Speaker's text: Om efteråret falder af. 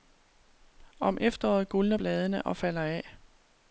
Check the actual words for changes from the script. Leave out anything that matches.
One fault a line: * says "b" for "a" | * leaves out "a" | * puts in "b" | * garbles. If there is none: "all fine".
* puts in "gulner bladene og"